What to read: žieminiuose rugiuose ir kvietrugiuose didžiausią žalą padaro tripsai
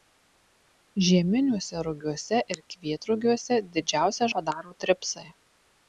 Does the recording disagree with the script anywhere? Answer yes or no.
yes